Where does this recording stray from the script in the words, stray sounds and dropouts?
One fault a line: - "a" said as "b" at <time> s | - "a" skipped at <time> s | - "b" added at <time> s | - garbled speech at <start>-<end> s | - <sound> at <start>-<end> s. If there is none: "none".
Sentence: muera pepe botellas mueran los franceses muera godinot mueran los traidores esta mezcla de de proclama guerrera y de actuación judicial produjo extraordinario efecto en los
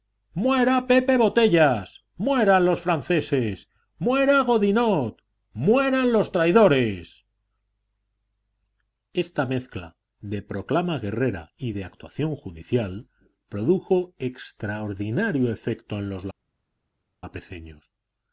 - "de" skipped at 10.4 s